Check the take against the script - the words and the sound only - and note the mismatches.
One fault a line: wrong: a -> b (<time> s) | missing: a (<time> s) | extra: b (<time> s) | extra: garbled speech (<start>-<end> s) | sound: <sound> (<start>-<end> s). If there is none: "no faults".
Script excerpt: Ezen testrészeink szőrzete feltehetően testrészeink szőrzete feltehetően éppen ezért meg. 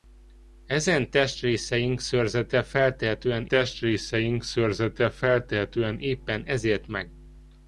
no faults